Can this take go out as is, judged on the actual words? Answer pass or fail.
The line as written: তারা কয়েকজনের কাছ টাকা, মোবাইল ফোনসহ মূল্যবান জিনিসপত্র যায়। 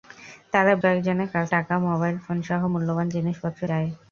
pass